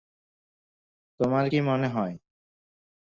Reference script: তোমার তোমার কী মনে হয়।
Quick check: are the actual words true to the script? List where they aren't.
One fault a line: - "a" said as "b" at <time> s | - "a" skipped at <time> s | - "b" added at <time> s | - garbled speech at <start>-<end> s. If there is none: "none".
- "তোমার" skipped at 1.4 s